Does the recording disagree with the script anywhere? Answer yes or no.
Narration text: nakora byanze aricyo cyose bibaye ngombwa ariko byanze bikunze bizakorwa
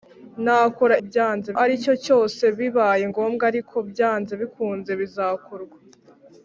no